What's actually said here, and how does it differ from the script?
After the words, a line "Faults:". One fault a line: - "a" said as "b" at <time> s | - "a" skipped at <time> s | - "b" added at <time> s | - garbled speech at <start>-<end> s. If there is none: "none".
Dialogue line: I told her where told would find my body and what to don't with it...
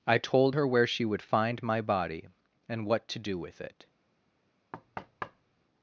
I told her where she would find my body and what to do with it...
Faults:
- "told" said as "she" at 0.9 s
- "don't" said as "do" at 3.2 s